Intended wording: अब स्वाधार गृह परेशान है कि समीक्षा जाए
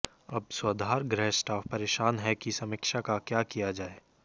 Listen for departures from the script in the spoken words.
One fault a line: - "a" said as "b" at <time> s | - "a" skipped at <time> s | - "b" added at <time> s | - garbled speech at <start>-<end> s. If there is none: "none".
- "स्टाफ" added at 1.3 s
- "का क्या किया" added at 3.0 s